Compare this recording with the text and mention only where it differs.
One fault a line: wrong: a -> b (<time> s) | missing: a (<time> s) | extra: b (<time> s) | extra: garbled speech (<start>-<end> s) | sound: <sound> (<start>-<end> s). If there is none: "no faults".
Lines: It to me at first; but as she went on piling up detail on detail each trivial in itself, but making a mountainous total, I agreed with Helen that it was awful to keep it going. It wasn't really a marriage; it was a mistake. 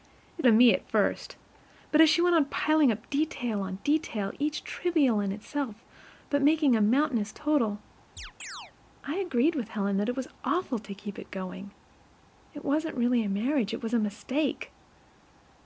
sound: chirp (8.2-8.7 s)